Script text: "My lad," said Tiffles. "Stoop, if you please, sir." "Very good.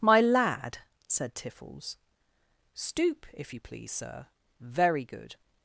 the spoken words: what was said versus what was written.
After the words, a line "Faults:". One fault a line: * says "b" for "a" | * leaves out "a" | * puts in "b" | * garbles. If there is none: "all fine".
"My lad," said Tiffles. "Stoop, if you please, sir." "Very good.
Faults:
all fine